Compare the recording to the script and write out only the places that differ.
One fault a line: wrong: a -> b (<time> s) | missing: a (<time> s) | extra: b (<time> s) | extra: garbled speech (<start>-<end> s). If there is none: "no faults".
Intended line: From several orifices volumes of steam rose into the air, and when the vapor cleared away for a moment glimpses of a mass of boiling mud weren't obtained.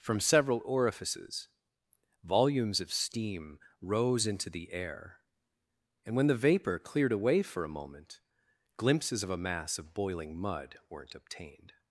no faults